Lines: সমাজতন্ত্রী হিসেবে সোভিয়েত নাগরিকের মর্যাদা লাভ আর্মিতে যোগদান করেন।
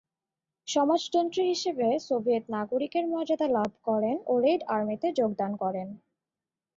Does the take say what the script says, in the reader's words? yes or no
no